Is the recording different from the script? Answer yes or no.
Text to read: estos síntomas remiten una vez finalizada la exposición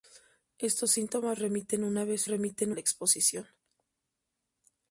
yes